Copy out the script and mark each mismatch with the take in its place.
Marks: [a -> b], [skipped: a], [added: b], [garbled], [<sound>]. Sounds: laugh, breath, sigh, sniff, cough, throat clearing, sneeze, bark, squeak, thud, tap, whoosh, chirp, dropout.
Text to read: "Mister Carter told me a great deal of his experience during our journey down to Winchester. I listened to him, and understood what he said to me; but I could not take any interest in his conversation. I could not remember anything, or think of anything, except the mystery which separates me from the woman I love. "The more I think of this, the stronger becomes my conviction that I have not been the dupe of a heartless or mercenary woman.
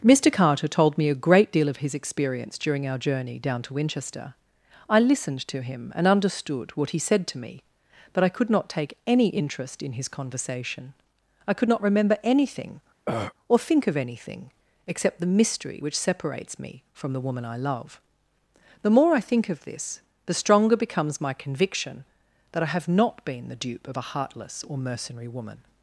"Mister Carter told me a great deal of his experience during our journey down to Winchester. I listened to him, and understood what he said to me; but I could not take any interest in his conversation. I could not remember anything, [throat clearing] or think of anything, except the mystery which separates me from the woman I love. "The more I think of this, the stronger becomes my conviction that I have not been the dupe of a heartless or mercenary woman.